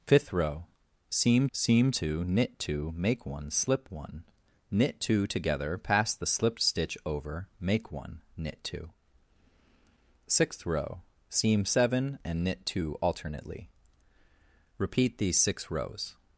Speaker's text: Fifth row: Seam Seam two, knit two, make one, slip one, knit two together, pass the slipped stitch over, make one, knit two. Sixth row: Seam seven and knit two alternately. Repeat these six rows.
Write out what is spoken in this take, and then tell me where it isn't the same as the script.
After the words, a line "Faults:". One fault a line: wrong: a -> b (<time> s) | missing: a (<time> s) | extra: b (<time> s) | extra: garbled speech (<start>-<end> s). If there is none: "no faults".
Fifth row: Seam Seam two, knit two, make one, slip one, knit two together, pass the slipped stitch over, make one, knit two. Sixth row: Seam seven and knit two alternately. Repeat these six rows.
Faults:
no faults